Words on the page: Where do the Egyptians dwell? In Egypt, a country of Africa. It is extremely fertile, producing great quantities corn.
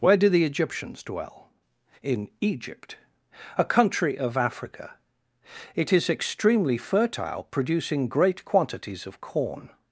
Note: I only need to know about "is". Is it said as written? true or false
true